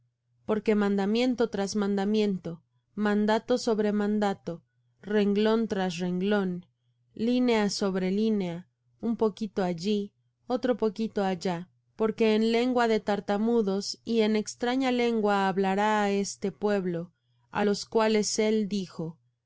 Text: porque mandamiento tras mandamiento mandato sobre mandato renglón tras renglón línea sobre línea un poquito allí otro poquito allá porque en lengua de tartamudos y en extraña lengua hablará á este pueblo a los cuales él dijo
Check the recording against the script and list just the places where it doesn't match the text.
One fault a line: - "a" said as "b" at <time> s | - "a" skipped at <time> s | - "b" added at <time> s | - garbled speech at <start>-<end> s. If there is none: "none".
none